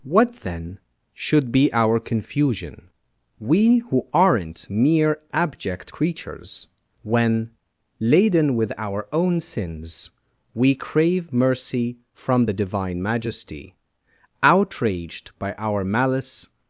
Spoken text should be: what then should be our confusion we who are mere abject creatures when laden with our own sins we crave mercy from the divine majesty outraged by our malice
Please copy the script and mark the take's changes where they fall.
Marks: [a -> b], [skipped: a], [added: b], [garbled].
what then should be our confusion we who [are -> aren't] mere abject creatures when laden with our own sins we crave mercy from the divine majesty outraged by our malice